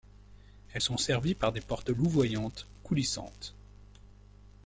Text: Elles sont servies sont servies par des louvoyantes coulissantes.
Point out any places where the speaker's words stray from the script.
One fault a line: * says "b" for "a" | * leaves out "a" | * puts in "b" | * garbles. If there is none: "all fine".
* leaves out "sont servies"
* puts in "portes"